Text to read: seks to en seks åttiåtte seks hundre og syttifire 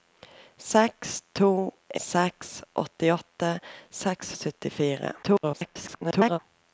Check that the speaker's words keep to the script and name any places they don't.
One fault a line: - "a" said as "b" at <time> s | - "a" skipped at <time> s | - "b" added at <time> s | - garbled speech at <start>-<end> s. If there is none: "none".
- "en" skipped at 1.5 s
- "hundre" skipped at 4.3 s
- garbled speech at 5.2-6.4 s